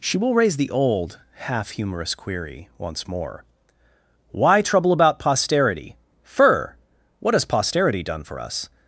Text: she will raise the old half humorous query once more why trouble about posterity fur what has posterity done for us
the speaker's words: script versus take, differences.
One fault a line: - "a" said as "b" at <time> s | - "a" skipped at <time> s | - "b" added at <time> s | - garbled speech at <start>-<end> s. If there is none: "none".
none